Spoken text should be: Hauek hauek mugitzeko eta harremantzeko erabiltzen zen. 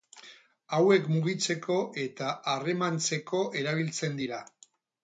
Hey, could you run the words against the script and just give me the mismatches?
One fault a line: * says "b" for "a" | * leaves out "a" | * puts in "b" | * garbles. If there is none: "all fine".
* leaves out "hauek"
* says "dira" for "zen"